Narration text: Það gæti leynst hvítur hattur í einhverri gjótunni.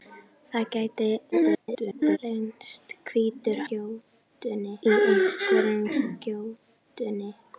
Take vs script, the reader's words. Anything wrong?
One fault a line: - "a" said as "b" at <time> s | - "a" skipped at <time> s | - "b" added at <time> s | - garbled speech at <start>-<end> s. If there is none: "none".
- garbled speech at 1.3-2.2 s
- "hattur" said as "gjótunni" at 3.7 s